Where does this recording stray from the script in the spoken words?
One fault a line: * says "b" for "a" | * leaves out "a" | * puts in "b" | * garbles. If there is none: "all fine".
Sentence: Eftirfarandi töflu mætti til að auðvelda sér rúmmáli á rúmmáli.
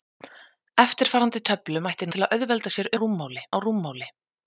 all fine